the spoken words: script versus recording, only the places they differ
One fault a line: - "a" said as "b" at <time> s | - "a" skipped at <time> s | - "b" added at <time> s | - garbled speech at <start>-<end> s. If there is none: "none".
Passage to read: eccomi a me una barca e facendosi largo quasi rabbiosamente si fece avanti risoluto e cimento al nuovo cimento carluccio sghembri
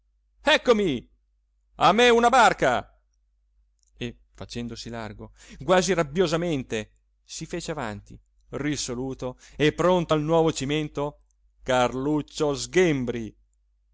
- "cimento" said as "pronto" at 9.7 s